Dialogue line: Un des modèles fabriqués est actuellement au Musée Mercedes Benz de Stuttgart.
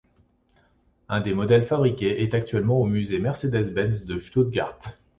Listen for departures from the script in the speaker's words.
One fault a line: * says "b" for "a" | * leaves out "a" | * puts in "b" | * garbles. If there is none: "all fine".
all fine